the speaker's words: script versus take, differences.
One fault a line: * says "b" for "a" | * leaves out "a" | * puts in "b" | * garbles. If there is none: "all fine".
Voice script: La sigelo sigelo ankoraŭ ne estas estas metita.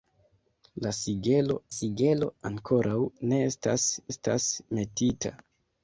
all fine